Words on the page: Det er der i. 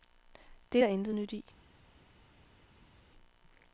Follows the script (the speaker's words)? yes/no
no